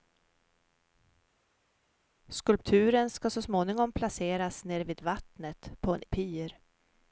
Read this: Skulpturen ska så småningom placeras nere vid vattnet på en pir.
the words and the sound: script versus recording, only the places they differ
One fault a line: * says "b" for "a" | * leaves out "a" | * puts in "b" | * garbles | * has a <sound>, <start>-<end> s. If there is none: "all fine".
all fine